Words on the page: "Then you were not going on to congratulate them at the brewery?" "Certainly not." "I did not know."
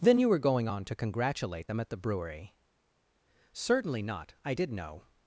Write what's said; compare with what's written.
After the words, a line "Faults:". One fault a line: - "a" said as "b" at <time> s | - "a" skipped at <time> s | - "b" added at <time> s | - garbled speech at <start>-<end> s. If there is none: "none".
"Then you were going on to congratulate them at the brewery?" "Certainly not." "I did know."
Faults:
- "not" skipped at 0.4 s
- "not" skipped at 4.7 s